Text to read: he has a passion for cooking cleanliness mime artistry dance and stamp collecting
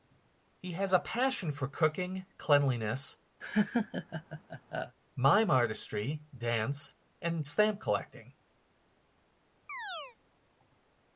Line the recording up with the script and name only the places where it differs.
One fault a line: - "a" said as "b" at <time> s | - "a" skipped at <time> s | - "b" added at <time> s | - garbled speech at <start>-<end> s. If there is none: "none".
none